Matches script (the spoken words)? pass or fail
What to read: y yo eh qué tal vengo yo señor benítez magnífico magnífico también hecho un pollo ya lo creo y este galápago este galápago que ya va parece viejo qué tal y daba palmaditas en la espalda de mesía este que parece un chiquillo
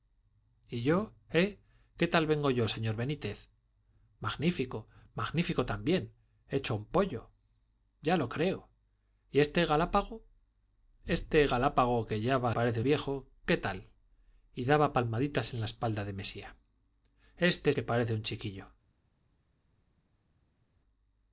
pass